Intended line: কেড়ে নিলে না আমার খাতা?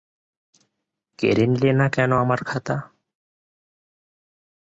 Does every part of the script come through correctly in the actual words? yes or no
no